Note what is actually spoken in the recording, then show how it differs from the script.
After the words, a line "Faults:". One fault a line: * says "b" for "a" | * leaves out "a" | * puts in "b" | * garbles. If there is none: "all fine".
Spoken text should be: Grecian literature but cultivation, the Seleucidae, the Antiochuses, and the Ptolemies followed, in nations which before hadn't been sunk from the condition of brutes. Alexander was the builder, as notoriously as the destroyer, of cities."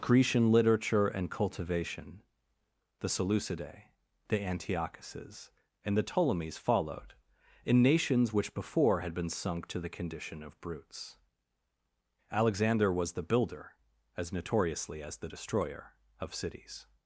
Grecian literature and cultivation, the Seleucidae, the Antiochuses, and the Ptolemies followed, in nations which before had been sunk to the condition of brutes. Alexander was the builder, as notoriously as the destroyer, of cities."
Faults:
* says "and" for "but"
* says "had" for "hadn't"
* says "to" for "from"